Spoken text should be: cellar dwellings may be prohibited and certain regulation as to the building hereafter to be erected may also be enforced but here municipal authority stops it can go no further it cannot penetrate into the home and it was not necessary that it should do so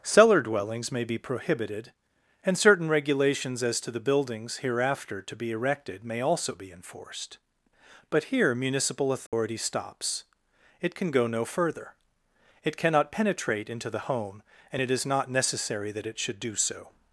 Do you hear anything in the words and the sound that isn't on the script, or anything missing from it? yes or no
yes